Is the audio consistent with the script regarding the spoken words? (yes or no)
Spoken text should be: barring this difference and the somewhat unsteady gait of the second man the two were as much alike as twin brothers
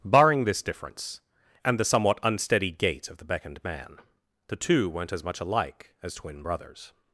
no